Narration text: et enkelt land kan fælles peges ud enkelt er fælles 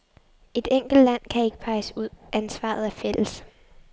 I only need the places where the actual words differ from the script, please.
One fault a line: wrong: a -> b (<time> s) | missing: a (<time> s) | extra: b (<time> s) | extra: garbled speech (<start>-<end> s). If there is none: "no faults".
wrong: fælles -> ikke (1.4 s)
wrong: enkelt -> ansvaret (2.3 s)